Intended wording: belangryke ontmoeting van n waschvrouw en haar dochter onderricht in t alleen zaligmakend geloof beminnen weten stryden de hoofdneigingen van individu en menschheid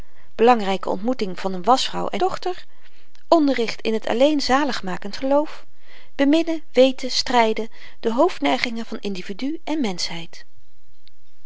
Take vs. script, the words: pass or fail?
fail